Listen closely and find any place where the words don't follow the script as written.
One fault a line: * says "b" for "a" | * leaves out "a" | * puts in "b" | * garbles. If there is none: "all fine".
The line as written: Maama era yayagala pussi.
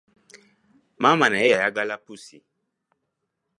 * says "naye" for "era"